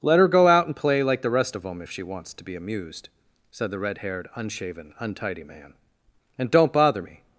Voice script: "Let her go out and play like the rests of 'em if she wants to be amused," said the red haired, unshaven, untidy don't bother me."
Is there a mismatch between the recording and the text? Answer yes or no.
yes